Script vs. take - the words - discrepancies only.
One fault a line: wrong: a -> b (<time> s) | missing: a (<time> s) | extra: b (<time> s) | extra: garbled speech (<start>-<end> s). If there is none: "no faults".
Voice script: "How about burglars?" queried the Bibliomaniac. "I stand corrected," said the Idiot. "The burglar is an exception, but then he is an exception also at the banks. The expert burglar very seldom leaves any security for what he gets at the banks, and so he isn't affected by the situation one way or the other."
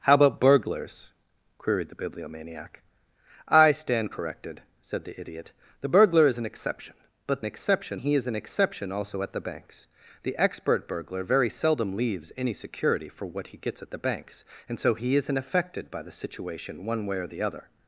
wrong: then -> exception (7.4 s)